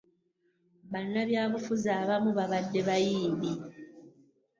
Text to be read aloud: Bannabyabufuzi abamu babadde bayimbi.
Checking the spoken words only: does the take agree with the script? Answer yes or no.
yes